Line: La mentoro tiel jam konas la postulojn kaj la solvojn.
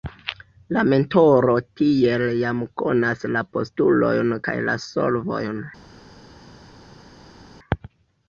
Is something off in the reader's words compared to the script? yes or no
no